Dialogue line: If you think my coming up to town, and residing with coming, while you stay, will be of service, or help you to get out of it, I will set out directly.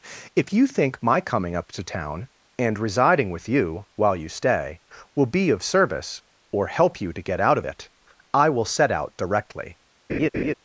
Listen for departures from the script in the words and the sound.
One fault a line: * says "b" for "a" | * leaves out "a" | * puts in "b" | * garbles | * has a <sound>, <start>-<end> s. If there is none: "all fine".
* says "you" for "coming"
* has a laugh, 10.1-10.5 s